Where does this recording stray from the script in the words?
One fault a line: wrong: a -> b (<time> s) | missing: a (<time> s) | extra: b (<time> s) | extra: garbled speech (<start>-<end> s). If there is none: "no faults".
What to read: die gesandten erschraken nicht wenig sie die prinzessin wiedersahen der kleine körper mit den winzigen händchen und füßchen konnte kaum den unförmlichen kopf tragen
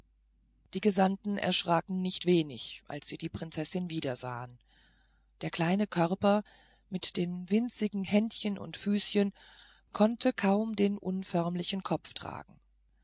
extra: als (2.9 s)